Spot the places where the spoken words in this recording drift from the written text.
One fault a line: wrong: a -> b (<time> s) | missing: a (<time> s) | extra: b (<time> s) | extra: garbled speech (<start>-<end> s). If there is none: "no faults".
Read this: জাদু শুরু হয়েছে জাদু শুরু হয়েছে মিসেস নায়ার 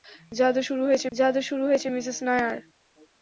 no faults